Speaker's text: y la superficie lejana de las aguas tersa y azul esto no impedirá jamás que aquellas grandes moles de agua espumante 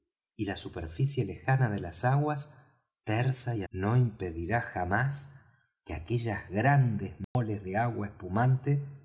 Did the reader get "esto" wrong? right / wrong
wrong